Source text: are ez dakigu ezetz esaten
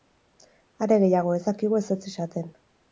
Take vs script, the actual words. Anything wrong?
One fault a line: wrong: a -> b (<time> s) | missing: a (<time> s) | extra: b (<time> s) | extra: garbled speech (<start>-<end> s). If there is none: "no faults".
extra: gehiago (1.1 s)